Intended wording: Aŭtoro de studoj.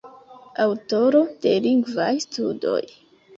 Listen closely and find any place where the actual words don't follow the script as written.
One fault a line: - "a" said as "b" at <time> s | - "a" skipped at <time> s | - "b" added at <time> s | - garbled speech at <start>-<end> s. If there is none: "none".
- "lingvaj" added at 1.7 s